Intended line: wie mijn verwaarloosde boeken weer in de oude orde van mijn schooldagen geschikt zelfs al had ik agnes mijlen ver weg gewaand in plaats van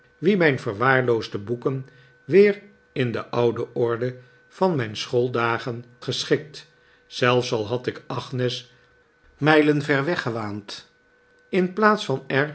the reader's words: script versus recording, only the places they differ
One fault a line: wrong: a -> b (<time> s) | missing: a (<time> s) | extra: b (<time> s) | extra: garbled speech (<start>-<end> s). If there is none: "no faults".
no faults